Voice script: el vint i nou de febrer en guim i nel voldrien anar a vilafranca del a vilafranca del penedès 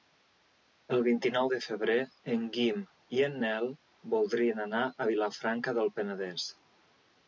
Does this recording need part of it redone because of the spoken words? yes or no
yes